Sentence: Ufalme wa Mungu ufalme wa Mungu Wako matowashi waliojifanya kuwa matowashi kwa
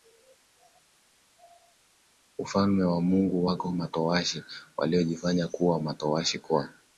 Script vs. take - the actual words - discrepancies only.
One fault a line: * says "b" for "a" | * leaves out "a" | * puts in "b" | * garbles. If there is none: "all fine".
* leaves out "ufalme wa Mungu"